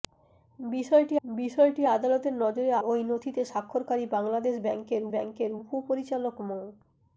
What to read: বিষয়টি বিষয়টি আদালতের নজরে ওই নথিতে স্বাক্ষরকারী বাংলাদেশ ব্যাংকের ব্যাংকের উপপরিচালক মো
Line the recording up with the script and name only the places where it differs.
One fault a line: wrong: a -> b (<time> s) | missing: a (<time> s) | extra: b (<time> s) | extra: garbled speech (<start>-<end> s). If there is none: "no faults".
no faults